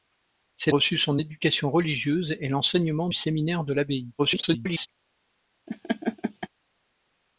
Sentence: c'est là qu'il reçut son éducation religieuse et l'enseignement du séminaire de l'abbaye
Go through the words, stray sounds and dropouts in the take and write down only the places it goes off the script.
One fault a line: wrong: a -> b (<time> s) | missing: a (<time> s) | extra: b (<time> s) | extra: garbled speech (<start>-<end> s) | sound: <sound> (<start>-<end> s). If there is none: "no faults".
missing: là qu'il (0.7 s)
missing: du (3.1 s)
extra: garbled speech (4.2-4.9 s)
sound: laugh (5.7-6.5 s)